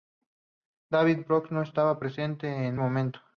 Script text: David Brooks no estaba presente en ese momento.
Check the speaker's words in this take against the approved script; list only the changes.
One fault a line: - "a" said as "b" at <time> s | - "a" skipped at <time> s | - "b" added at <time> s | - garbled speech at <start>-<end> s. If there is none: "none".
- "ese" skipped at 2.8 s